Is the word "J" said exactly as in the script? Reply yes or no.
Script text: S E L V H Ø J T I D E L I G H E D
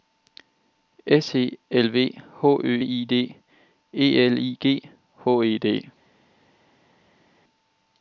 no